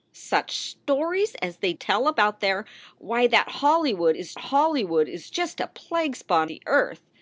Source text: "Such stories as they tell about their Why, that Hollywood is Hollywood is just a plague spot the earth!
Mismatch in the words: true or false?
false